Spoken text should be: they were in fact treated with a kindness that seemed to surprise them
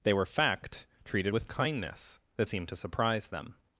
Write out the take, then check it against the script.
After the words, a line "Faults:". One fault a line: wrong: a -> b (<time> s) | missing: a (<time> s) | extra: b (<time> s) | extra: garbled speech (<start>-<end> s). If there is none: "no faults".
they were fact treated with kindness that seemed to surprise them
Faults:
missing: in (0.2 s)
missing: a (1.5 s)